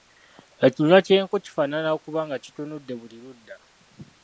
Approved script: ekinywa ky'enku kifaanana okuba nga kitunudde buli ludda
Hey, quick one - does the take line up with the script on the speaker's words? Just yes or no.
yes